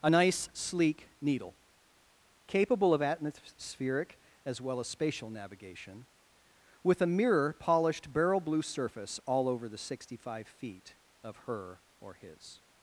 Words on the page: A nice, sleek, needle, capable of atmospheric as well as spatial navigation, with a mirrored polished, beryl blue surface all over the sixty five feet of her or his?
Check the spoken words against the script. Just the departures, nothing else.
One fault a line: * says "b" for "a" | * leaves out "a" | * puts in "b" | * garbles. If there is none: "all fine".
* says "mirror" for "mirrored"